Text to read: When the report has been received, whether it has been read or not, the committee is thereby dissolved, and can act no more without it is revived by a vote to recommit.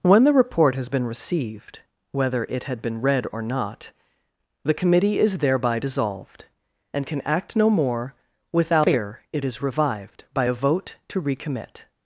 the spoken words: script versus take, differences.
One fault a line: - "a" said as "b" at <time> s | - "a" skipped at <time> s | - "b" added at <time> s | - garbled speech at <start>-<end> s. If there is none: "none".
- "has" said as "had" at 2.6 s